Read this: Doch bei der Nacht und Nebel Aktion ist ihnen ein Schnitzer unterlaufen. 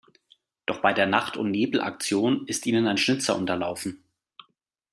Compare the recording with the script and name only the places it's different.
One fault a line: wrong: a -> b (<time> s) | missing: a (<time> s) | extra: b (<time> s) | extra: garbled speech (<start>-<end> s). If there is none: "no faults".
no faults